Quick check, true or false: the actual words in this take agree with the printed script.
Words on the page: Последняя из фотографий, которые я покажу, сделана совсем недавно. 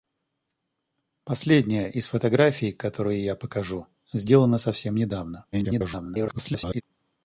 false